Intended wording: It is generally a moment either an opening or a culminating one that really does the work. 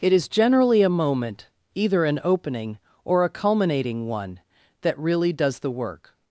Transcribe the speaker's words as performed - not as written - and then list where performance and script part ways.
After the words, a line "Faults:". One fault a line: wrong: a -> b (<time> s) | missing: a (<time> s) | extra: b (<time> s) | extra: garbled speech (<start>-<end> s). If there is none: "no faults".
It is generally a moment either an opening or a culminating one that really does the work.
Faults:
no faults